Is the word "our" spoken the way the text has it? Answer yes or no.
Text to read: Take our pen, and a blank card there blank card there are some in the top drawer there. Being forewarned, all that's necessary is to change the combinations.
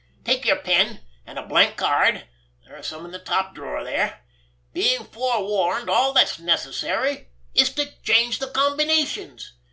no